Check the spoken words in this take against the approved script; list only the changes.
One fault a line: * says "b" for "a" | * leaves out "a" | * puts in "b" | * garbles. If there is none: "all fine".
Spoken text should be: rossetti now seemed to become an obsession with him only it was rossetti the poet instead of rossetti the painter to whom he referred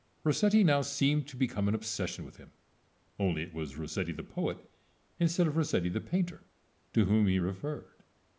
all fine